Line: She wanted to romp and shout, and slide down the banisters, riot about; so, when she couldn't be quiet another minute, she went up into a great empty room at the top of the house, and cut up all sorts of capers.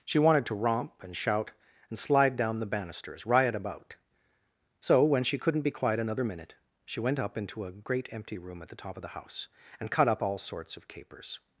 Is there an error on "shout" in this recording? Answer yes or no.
no